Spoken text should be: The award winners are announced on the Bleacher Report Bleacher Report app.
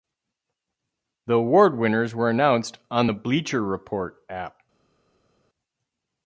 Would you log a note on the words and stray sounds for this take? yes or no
yes